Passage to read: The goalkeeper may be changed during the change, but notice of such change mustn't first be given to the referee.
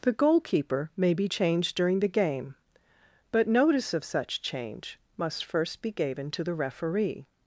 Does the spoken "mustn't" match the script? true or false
false